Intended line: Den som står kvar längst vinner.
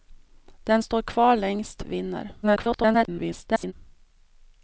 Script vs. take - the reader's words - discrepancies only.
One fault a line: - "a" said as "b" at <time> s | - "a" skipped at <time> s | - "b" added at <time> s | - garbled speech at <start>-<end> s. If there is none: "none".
- "som" skipped at 0.8 s
- garbled speech at 2.4-3.7 s